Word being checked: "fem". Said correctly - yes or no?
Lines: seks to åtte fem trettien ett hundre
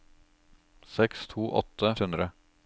no